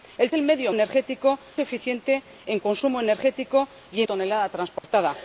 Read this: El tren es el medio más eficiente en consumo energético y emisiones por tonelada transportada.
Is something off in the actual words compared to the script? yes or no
yes